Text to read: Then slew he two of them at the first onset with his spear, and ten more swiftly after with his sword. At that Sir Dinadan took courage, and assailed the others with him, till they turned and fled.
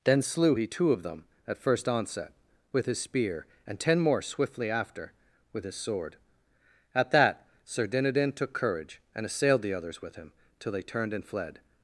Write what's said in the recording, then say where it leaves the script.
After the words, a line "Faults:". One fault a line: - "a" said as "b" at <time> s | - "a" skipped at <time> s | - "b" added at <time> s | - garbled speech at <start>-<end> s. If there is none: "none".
Then slew he two of them at first onset with his spear, and ten more swiftly after with his sword. At that Sir Dinadan took courage, and assailed the others with him, till they turned and fled.
Faults:
- "the" skipped at 1.6 s